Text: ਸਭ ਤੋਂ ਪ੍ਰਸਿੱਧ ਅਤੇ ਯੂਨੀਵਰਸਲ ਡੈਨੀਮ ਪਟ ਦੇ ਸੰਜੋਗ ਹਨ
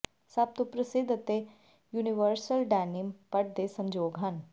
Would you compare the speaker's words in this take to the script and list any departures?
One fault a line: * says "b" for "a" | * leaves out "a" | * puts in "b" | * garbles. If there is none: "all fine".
all fine